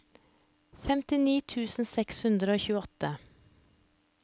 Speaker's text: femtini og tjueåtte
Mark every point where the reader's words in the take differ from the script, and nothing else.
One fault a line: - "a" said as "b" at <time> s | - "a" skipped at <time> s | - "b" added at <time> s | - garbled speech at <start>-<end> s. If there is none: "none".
- "tusen seks hundre" added at 1.5 s